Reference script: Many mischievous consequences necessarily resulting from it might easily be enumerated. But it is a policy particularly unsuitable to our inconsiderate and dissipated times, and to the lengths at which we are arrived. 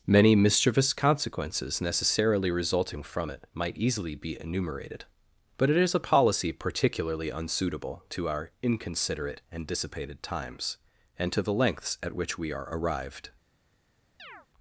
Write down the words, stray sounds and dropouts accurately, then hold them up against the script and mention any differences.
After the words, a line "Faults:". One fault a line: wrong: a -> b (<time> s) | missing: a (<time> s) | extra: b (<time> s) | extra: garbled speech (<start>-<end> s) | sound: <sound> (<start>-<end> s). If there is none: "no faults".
Many mischievous consequences necessarily resulting from it might easily be enumerated. But it is a policy particularly unsuitable to our inconsiderate and dissipated times, and to the lengths at which we are arrived.
Faults:
sound: chirp (14.2-14.5 s)